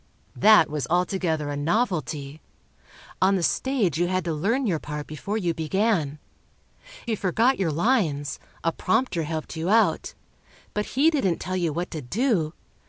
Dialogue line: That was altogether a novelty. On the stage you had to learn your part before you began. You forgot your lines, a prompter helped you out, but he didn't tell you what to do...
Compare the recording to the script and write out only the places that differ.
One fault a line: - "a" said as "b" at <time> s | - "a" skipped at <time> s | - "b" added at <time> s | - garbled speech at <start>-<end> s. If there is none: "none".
none